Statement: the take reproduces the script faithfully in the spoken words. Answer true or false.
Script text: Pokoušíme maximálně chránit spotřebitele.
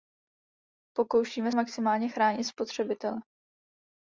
true